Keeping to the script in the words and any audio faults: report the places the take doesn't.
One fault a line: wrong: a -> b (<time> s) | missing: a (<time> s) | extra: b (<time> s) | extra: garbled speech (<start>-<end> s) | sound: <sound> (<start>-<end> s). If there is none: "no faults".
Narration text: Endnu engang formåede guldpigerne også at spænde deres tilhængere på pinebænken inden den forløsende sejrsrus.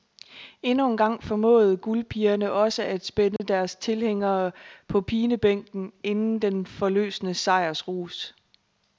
sound: dropout (3.4-3.4 s)